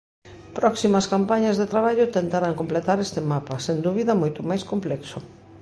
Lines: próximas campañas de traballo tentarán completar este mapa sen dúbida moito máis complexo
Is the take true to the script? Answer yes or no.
yes